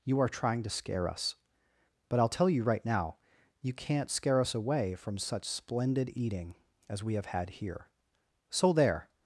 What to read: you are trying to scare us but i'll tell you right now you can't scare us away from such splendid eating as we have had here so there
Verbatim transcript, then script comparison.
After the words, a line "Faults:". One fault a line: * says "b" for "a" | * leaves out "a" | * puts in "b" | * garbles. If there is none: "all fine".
you are trying to scare us but i'll tell you right now you can't scare us away from such splendid eating as we have had here so there
Faults:
all fine